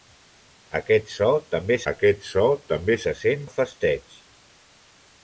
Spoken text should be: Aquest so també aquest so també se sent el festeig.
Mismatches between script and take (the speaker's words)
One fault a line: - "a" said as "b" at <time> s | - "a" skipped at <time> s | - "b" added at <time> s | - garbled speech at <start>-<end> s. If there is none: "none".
none